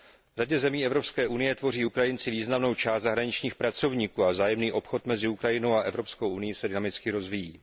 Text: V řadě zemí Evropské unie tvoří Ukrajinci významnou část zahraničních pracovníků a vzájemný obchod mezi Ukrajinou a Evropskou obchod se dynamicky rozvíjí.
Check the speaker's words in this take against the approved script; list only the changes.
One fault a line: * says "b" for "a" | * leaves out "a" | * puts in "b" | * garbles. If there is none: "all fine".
* says "unií" for "obchod"